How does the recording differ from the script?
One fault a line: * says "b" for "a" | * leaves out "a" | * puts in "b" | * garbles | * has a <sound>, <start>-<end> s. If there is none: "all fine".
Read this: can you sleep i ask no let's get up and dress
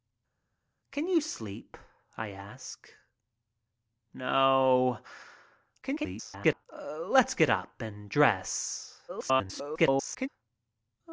* garbles
* garbles